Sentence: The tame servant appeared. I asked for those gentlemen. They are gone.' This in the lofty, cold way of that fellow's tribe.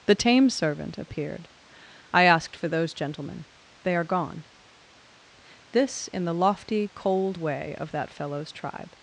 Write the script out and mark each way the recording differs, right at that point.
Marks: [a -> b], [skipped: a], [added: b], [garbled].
The tame servant appeared. I asked for those gentlemen. They are gone.' This in the lofty, cold way of that fellow's tribe.